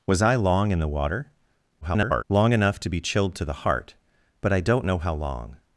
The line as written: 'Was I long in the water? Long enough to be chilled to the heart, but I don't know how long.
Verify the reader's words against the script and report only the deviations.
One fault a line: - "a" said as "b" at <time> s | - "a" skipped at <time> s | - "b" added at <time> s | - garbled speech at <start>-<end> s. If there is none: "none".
- garbled speech at 1.8-2.2 s